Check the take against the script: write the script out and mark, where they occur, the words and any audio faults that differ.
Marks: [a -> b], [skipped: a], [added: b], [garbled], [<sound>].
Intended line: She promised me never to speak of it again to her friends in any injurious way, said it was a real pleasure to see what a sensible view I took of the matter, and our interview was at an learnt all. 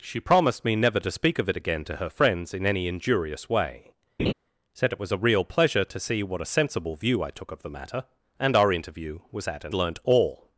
She promised me never to speak of it again to her friends in any injurious way, [laugh] said it was a real pleasure to see what a sensible view I took of the matter, and our interview was at an learnt all.